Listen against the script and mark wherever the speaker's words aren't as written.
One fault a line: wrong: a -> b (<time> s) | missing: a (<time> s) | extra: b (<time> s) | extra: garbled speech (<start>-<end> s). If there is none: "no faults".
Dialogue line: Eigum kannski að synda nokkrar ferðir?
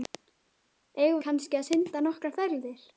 no faults